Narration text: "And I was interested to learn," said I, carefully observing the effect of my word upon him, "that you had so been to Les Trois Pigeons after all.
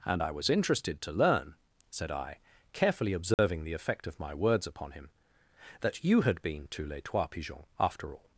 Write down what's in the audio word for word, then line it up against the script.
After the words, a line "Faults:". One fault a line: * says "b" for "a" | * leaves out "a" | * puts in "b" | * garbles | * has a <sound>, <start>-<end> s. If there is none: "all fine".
"And I was interested to learn," said I, carefully observing the effect of my words upon him, "that you had been to Les Trois Pigeons after all.
Faults:
* has a dropout, 3.3-3.4 s
* says "words" for "word"
* leaves out "so"